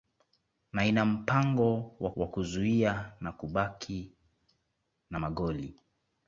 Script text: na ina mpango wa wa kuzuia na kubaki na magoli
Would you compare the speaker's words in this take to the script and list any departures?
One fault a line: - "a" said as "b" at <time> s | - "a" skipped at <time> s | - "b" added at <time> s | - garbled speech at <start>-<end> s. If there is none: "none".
none